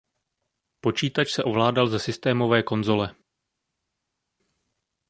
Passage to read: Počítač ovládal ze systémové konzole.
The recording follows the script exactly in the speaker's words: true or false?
false